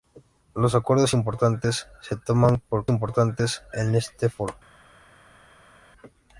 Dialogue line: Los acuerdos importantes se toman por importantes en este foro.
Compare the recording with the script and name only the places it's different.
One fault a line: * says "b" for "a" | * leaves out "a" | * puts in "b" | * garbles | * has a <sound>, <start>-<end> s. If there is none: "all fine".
all fine